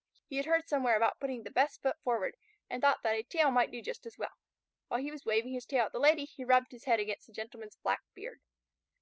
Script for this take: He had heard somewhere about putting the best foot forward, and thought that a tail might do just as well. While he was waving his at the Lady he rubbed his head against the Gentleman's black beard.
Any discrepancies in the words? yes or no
yes